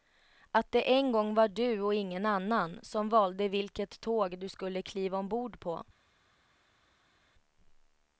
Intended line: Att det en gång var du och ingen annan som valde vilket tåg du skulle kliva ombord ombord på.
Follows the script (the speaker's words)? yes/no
no